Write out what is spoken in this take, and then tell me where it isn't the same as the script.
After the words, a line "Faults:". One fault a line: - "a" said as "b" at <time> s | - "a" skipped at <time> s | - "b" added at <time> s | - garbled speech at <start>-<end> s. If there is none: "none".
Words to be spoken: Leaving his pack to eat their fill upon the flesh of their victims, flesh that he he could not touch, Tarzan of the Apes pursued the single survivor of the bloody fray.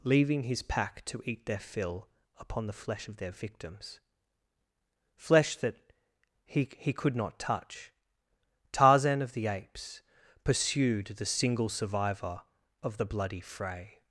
Leaving his pack to eat their fill upon the flesh of their victims, flesh that he he could not touch, Tarzan of the Apes pursued the single survivor of the bloody fray.
Faults:
none